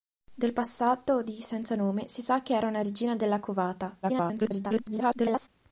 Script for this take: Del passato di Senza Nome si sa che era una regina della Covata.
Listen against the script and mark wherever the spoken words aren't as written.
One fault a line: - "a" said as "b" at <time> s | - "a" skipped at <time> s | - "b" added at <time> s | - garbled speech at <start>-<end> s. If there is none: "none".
- garbled speech at 4.0-5.5 s